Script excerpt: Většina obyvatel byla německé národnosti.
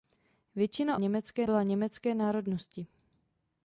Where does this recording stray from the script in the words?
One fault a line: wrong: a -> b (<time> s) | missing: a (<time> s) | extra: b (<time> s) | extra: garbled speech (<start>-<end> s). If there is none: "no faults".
wrong: obyvatel -> německé (0.9 s)